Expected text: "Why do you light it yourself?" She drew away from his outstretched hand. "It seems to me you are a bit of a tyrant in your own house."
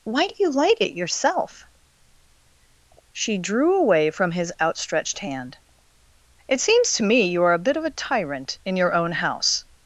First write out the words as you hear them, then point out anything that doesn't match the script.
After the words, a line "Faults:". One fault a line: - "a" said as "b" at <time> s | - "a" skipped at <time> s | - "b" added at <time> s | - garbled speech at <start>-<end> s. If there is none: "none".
"Why do you light it yourself?" She drew away from his outstretched hand. "It seems to me you are a bit of a tyrant in your own house."
Faults:
none